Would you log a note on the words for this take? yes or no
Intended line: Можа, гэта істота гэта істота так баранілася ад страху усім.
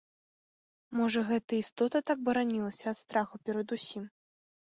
yes